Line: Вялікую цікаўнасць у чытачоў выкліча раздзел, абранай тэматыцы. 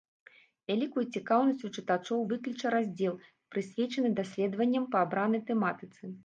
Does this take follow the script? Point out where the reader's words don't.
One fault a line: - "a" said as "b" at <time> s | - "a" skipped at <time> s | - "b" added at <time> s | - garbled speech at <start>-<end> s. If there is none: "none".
- "прысвечаны даследаванням па" added at 3.6 s